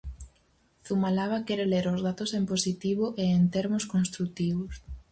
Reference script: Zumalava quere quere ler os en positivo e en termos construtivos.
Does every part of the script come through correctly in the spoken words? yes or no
no